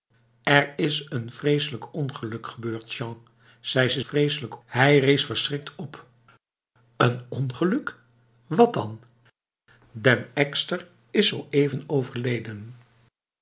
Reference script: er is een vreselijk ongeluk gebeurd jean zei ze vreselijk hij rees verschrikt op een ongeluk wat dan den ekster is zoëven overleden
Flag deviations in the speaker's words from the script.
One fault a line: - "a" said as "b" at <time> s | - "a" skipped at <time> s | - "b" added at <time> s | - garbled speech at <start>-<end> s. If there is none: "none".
none